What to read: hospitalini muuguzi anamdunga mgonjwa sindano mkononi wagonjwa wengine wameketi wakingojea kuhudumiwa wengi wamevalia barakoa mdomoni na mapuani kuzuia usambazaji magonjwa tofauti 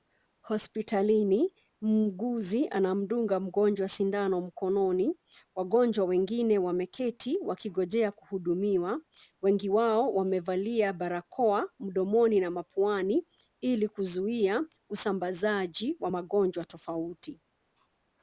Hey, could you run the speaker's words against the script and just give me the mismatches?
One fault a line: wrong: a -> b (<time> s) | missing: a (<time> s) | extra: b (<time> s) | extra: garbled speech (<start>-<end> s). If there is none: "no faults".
extra: wao (9.7 s)
extra: ili (13.6 s)
extra: wa (16.0 s)